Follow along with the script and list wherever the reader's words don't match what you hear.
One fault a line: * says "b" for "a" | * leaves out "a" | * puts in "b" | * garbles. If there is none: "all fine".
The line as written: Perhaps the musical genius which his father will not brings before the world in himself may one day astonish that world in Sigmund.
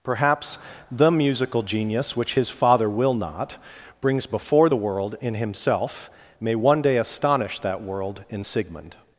all fine